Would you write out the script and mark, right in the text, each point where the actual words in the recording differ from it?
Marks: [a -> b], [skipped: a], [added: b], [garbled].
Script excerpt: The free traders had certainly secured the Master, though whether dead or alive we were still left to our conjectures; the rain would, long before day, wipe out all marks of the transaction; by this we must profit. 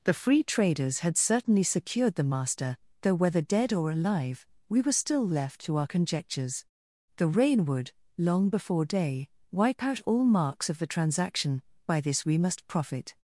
The free traders had certainly secured the Master, though whether dead or alive we were still left to our conjectures; the rain would, long before day, wipe out all marks of the transaction; by this we must profit.